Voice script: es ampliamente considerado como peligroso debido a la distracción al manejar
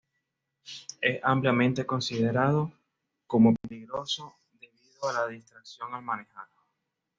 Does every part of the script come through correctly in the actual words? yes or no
yes